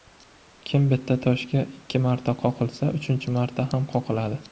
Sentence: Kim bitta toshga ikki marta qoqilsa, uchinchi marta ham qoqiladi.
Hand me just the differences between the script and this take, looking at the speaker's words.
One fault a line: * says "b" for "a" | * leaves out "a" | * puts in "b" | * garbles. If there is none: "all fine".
all fine